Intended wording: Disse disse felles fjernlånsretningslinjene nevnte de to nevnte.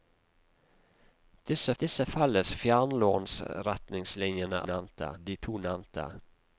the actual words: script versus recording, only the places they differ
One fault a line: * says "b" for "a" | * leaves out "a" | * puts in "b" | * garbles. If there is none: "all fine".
all fine